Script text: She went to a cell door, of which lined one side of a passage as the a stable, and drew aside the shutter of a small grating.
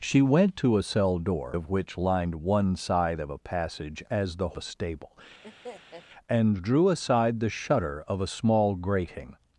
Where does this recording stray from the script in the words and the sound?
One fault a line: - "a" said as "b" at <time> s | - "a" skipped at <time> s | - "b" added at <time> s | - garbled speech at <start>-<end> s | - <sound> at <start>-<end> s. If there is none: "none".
- laugh at 5.4-6.0 s